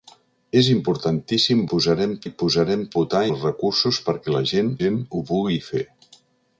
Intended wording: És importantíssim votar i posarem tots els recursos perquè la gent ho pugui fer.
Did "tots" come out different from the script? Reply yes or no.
yes